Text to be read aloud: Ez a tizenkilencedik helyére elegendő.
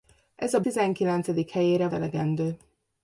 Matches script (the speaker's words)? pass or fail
pass